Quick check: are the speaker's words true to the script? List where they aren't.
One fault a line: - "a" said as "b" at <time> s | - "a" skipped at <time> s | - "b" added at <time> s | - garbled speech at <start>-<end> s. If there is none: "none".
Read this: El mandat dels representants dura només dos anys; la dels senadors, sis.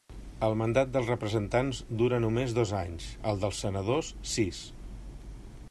- "la" said as "el" at 3.3 s